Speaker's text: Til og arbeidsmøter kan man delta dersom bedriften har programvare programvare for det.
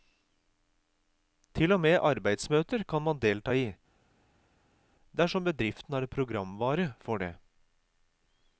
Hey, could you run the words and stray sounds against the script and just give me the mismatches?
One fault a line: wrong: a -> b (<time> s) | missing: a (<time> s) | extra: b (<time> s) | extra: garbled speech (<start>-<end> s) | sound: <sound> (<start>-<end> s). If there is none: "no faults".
extra: med (1.8 s)
extra: i (3.5 s)
missing: programvare (6.9 s)